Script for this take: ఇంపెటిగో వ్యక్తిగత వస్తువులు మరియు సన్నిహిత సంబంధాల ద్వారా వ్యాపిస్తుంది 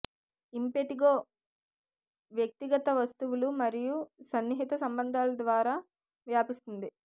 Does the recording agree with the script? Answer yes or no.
yes